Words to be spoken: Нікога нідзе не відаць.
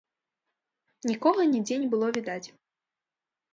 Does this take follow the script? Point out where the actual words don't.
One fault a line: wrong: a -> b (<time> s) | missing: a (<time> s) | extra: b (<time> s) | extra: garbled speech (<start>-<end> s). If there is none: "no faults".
extra: было (1.9 s)